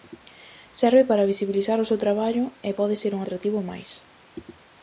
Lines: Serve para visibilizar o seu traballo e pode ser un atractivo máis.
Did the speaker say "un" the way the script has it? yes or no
yes